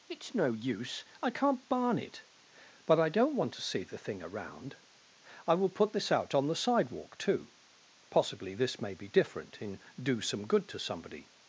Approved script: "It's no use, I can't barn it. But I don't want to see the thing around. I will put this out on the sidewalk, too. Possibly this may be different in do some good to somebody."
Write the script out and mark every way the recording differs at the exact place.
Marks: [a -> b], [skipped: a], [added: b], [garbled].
"It's no use, I can't barn it. But I don't want to see the thing around. I will put this out on the sidewalk, too. Possibly this may be different in do some good to somebody."